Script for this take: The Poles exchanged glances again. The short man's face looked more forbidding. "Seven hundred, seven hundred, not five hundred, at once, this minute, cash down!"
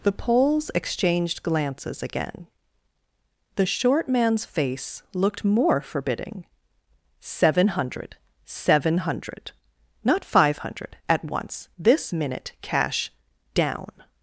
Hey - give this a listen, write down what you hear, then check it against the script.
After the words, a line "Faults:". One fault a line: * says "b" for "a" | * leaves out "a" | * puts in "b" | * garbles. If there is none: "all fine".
The Poles exchanged glances again. The short man's face looked more forbidding. "Seven hundred, seven hundred, not five hundred, at once, this minute, cash down!"
Faults:
all fine